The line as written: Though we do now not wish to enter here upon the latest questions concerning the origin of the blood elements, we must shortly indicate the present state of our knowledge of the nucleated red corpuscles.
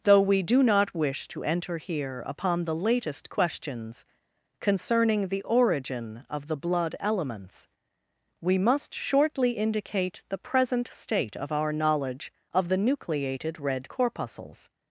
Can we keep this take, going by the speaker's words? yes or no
no